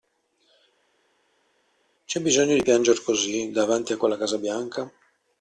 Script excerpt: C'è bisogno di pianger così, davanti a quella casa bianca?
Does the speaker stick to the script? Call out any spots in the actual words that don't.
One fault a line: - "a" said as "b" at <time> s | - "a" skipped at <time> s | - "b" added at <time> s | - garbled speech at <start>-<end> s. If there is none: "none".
none